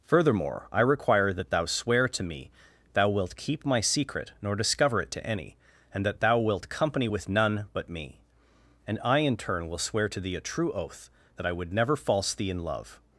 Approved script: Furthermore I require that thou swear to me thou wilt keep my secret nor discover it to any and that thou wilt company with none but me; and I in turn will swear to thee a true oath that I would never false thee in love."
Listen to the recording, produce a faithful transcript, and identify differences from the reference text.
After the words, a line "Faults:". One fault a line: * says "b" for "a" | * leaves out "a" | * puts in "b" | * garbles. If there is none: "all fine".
Furthermore I require that thou swear to me thou wilt keep my secret nor discover it to any and that thou wilt company with none but me; and I in turn will swear to thee a true oath that I would never false thee in love."
Faults:
all fine